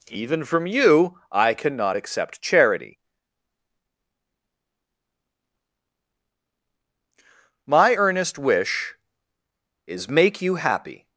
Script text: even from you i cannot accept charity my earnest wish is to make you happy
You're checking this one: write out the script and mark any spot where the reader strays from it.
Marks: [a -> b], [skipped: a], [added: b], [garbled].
even from you i cannot accept charity my earnest wish is [skipped: to] make you happy